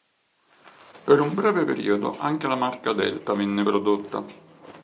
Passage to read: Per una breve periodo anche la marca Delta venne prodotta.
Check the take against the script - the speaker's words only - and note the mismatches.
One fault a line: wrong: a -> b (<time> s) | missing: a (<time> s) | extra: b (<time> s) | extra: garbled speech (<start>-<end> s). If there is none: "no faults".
wrong: una -> un (1.2 s)